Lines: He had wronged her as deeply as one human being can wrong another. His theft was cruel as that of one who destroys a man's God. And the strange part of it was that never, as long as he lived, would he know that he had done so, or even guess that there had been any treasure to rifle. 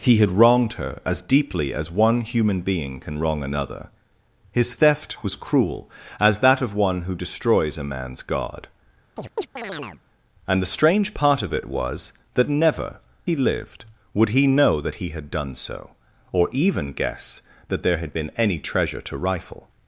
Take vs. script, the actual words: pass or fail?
fail